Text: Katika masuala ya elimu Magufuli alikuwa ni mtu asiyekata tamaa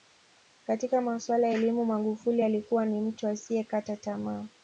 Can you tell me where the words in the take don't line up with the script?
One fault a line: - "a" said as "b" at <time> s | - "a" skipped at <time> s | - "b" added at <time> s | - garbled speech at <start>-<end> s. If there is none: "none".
none